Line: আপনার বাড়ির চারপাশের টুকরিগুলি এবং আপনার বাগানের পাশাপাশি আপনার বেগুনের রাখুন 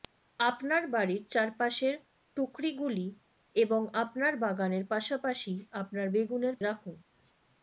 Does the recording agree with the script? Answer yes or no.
yes